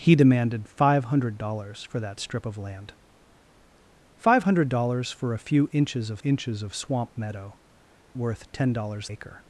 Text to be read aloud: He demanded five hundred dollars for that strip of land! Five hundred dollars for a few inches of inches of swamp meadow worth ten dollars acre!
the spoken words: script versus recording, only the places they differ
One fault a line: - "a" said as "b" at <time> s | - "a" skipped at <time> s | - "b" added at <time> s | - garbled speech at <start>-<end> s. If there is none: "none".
none